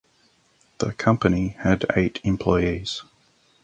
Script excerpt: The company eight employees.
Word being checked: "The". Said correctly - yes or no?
yes